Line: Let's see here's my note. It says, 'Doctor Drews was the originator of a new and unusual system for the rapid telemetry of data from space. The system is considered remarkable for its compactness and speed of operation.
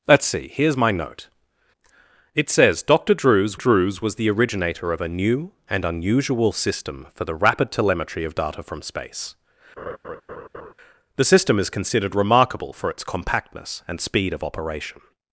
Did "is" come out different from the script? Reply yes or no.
no